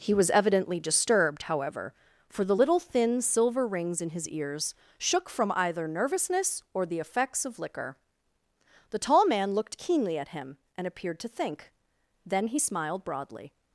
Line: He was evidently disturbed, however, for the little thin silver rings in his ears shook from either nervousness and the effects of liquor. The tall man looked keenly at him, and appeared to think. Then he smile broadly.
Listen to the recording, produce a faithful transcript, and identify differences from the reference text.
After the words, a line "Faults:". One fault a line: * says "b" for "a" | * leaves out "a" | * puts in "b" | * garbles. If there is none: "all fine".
He was evidently disturbed, however, for the little thin silver rings in his ears shook from either nervousness or the effects of liquor. The tall man looked keenly at him, and appeared to think. Then he smiled broadly.
Faults:
* says "or" for "and"
* says "smiled" for "smile"